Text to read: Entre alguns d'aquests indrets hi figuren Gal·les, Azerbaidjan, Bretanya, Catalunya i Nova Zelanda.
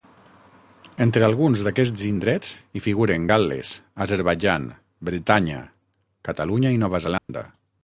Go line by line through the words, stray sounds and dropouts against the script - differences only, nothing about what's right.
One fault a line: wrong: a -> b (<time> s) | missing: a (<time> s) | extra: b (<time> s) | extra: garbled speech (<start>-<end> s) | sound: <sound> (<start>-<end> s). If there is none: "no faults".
sound: dropout (7.2-7.3 s)